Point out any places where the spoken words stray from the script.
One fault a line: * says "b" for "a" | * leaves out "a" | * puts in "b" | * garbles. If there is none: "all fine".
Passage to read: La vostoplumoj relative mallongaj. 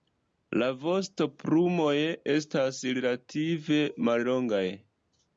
* puts in "estas"